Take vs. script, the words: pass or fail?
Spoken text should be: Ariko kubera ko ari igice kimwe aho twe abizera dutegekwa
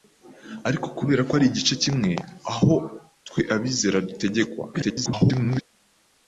fail